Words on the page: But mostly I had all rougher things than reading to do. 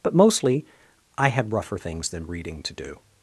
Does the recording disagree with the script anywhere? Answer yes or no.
yes